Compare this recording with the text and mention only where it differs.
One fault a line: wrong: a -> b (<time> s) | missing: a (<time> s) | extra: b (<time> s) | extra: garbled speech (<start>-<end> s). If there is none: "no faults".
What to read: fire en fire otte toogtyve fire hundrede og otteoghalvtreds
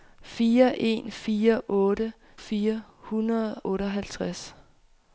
missing: toogtyve (2.1 s)
missing: og (3.6 s)